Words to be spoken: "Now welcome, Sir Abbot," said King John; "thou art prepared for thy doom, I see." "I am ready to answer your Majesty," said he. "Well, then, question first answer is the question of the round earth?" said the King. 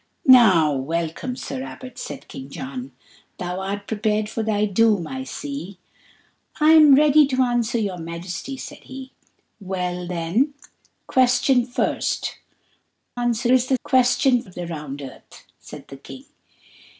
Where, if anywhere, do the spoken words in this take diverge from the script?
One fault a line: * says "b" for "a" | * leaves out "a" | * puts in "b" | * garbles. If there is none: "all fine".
all fine